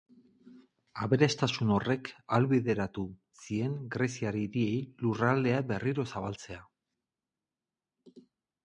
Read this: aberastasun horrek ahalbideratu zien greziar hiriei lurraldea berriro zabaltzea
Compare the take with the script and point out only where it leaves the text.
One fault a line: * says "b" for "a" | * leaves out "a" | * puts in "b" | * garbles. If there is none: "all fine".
all fine